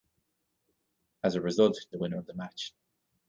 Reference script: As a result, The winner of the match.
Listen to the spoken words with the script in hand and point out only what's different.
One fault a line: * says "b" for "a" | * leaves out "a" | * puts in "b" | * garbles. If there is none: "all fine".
all fine